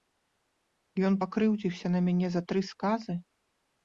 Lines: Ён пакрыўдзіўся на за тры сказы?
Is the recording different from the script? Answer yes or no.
yes